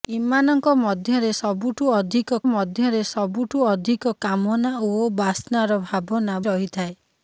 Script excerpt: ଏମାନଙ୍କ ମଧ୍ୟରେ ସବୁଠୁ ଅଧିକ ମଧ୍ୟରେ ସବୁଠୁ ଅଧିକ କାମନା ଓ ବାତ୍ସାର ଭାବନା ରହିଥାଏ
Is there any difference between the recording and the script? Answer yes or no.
no